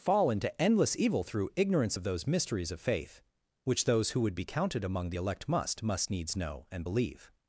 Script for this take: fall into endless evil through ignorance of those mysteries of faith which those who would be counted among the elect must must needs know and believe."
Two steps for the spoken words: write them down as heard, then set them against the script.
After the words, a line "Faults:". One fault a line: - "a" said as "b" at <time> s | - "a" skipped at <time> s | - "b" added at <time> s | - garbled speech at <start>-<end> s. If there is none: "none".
fall into endless evil through ignorance of those mysteries of faith which those who would be counted among the elect must must needs know and believe."
Faults:
none